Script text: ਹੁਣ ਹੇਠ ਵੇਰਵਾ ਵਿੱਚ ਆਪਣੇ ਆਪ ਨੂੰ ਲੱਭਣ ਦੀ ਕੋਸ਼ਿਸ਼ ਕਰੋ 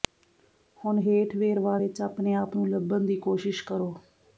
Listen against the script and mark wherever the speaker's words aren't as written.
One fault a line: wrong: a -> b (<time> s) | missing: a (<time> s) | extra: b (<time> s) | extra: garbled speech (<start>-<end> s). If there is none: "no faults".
no faults